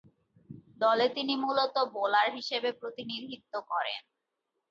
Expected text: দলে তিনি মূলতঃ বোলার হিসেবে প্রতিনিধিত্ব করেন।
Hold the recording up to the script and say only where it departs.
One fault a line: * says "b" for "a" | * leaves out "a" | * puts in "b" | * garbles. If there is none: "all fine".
all fine